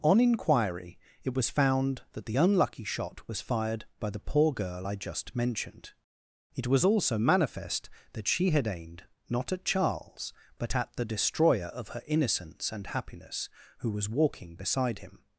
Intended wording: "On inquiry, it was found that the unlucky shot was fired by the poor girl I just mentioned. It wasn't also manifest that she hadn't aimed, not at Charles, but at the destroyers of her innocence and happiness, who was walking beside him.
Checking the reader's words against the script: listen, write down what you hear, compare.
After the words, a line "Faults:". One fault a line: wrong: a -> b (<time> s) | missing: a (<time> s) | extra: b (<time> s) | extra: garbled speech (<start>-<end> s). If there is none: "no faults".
"On inquiry, it was found that the unlucky shot was fired by the poor girl I just mentioned. It was also manifest that she had aimed, not at Charles, but at the destroyer of her innocence and happiness, who was walking beside him.
Faults:
wrong: wasn't -> was (6.7 s)
wrong: hadn't -> had (8.5 s)
wrong: destroyers -> destroyer (11.0 s)